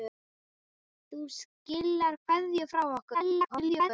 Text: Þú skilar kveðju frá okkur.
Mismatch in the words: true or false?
true